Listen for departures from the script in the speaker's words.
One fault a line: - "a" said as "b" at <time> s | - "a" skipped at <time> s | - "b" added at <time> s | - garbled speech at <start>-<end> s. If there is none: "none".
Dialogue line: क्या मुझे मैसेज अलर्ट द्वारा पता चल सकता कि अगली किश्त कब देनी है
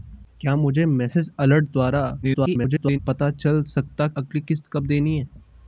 - garbled speech at 2.2-3.0 s
- "कि" skipped at 4.1 s